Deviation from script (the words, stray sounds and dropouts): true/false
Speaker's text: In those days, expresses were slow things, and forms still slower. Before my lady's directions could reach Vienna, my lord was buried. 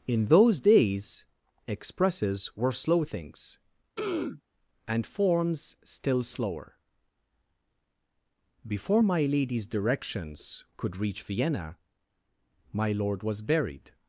true